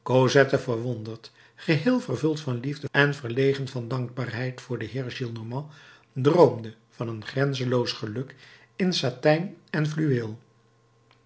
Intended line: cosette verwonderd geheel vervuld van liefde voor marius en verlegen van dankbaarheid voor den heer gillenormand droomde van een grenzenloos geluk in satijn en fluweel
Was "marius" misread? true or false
true